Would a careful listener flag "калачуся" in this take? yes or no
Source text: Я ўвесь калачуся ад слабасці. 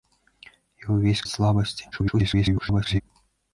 yes